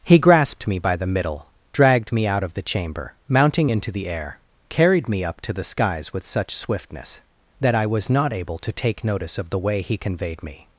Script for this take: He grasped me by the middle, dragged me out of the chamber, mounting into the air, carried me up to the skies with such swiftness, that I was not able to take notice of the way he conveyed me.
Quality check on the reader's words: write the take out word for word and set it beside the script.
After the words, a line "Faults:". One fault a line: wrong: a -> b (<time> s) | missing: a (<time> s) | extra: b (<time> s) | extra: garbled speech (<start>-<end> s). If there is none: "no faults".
He grasped me by the middle, dragged me out of the chamber, mounting into the air, carried me up to the skies with such swiftness, that I was not able to take notice of the way he conveyed me.
Faults:
no faults